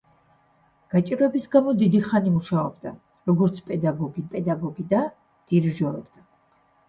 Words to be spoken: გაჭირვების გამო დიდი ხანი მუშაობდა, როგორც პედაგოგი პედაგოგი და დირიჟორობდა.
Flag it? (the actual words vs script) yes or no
no